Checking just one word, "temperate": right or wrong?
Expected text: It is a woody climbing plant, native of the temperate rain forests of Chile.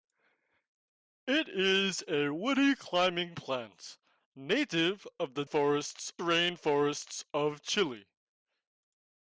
wrong